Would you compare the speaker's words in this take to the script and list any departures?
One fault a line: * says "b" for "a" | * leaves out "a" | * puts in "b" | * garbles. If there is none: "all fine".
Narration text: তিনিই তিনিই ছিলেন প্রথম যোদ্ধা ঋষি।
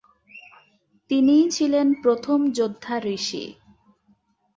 * leaves out "তিনিই"